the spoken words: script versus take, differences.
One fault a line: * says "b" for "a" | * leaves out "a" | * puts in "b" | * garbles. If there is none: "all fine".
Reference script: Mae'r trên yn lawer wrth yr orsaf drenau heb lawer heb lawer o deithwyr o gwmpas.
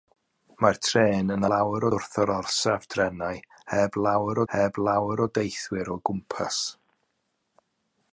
all fine